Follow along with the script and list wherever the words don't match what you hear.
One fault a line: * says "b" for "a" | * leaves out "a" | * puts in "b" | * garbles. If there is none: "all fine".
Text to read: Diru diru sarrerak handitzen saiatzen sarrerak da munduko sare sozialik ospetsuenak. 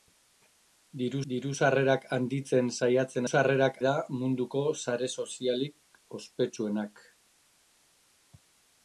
all fine